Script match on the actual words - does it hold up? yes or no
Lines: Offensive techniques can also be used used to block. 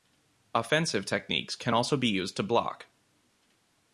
no